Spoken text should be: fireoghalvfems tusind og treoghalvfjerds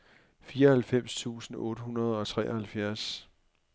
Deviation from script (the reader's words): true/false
true